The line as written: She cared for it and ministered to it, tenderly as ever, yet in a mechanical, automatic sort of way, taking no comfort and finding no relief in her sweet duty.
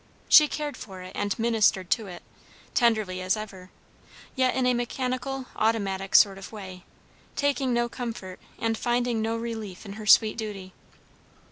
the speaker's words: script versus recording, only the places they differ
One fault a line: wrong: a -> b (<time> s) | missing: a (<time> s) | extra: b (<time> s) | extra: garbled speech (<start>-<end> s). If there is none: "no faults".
no faults